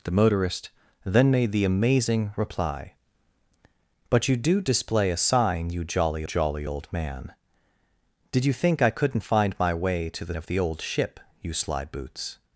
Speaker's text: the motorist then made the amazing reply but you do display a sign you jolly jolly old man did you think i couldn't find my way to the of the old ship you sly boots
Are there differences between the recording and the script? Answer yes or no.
no